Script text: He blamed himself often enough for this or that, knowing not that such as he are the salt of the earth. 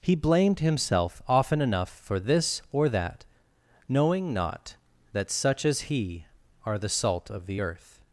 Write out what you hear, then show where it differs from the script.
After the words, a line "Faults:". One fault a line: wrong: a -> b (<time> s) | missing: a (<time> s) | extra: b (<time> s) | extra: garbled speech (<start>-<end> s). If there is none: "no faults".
He blamed himself often enough for this or that, knowing not that such as he are the salt of the earth.
Faults:
no faults